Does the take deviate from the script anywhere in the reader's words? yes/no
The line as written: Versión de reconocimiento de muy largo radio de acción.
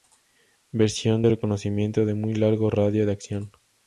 no